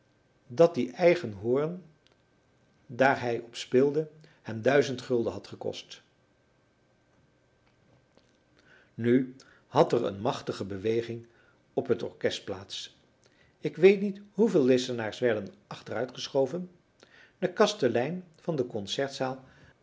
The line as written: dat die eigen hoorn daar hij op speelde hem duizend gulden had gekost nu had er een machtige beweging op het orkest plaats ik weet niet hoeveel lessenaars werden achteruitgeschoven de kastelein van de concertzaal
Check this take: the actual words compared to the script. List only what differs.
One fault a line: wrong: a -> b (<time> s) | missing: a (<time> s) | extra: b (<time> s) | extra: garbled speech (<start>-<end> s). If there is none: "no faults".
no faults